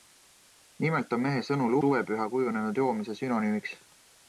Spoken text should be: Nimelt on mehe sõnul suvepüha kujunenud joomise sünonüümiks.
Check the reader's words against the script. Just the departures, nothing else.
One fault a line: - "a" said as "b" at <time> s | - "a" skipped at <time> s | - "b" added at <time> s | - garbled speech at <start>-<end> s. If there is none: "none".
none